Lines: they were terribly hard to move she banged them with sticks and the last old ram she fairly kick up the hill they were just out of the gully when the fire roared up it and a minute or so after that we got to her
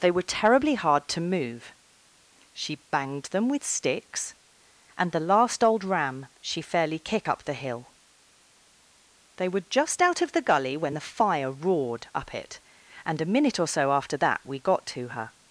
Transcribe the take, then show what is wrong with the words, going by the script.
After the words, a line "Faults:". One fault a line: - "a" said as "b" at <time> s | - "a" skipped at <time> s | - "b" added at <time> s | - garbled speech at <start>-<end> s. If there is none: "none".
they were terribly hard to move she banged them with sticks and the last old ram she fairly kick up the hill they were just out of the gully when the fire roared up it and a minute or so after that we got to her
Faults:
none